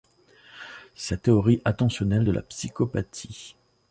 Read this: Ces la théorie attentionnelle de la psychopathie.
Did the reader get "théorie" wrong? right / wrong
right